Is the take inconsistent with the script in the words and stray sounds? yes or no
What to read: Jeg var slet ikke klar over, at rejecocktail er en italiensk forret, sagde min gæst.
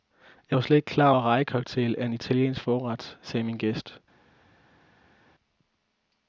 yes